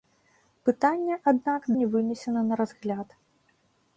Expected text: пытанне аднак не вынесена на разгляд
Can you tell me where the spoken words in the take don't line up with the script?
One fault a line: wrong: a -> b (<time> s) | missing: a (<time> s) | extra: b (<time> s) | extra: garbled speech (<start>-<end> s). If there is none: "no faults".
no faults